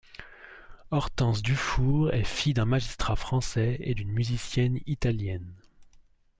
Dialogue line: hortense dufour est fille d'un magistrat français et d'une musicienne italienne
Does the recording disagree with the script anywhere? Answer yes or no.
no